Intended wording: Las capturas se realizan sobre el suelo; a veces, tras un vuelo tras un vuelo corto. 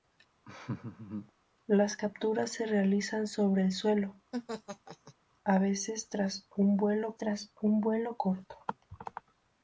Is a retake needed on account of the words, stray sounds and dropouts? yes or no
yes